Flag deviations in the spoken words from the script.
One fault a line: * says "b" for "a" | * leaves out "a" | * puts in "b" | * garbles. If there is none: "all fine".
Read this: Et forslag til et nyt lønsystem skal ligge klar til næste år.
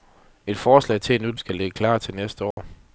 * leaves out "lønsystem"